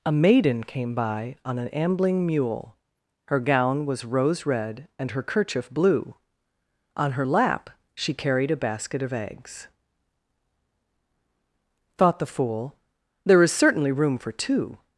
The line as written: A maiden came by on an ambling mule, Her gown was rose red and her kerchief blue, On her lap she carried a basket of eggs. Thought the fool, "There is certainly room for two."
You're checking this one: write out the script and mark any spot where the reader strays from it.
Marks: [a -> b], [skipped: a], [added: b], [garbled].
A maiden came by on an ambling mule, Her gown was rose red and her kerchief blue, On her lap she carried a basket of eggs. Thought the fool, "There is certainly room for two."